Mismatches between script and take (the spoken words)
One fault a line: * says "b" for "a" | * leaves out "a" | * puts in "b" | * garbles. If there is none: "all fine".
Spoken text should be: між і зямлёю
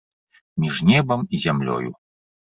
* puts in "небам"